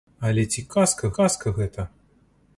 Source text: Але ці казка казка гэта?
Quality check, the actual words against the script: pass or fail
pass